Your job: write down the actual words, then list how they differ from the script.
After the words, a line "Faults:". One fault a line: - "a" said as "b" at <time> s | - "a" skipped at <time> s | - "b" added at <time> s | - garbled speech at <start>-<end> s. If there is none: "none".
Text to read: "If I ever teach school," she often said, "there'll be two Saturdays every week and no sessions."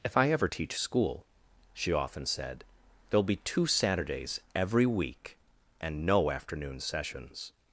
"If I ever teach school," she often said, "there'll be two Saturdays every week and no afternoon sessions."
Faults:
- "afternoon" added at 6.3 s